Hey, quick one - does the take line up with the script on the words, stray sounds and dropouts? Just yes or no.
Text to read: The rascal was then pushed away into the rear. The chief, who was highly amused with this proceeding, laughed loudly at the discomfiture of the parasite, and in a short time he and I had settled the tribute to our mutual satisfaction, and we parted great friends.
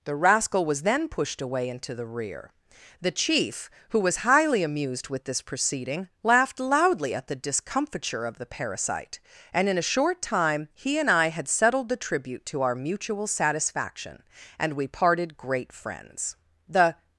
no